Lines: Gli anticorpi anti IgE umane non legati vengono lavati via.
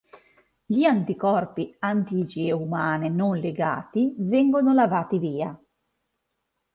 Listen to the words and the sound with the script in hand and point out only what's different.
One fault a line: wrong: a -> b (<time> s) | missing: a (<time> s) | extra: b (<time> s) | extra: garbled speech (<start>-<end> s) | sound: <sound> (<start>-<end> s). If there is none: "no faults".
no faults